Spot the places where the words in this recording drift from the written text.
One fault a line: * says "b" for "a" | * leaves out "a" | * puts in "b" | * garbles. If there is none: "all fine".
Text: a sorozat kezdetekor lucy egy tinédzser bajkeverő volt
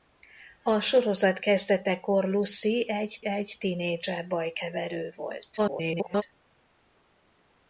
* puts in "egy"
* garbles